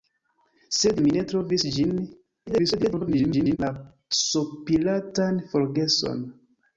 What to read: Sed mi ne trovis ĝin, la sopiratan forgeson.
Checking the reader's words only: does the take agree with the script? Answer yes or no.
no